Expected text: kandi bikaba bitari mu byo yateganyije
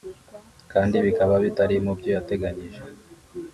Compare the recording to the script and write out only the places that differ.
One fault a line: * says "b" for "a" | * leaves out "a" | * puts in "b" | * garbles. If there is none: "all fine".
all fine